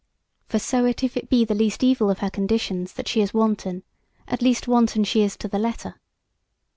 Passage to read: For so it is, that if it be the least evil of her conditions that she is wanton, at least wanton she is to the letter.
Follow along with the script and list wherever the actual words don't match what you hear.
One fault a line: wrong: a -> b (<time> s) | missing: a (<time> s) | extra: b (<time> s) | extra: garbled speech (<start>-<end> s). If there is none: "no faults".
missing: is that (1.0 s)